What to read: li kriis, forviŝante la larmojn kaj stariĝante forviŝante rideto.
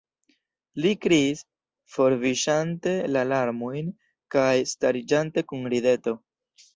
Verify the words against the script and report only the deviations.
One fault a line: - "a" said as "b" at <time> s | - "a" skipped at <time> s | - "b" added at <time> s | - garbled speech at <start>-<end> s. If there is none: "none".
- "forviŝante" said as "kun" at 5.5 s